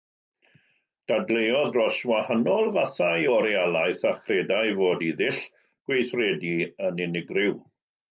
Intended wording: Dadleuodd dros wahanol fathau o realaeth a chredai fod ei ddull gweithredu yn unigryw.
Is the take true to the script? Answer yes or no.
yes